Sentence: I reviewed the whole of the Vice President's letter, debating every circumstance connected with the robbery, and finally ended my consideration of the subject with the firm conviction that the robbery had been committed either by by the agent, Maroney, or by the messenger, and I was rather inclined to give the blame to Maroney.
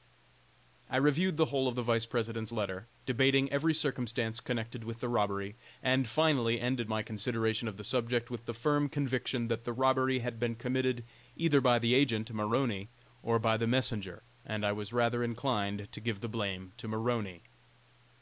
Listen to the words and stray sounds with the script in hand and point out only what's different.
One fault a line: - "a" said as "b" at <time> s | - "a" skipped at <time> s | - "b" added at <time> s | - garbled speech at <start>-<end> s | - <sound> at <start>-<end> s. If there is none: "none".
- "by" skipped at 11.8 s